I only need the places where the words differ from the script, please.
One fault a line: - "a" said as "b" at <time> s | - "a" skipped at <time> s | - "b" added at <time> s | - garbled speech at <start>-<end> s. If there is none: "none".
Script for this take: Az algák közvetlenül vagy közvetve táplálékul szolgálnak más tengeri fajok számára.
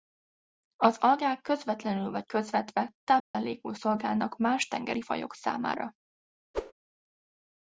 none